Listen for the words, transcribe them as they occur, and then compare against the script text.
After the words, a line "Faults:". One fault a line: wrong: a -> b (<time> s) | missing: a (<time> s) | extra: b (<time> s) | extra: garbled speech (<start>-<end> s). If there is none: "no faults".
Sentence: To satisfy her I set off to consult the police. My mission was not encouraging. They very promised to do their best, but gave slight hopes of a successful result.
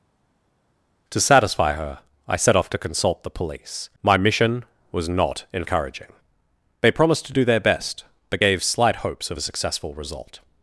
To satisfy her I set off to consult the police. My mission was not encouraging. They promised to do their best, but gave slight hopes of a successful result.
Faults:
missing: very (6.9 s)